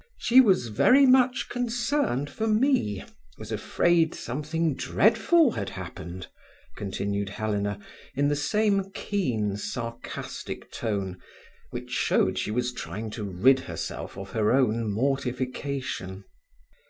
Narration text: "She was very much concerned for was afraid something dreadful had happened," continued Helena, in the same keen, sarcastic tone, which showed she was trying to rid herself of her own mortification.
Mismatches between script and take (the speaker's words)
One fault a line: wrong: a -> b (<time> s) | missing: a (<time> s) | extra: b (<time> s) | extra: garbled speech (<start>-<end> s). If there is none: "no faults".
extra: me (2.5 s)